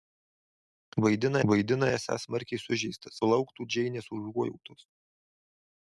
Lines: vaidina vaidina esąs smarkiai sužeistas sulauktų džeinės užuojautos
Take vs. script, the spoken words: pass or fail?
pass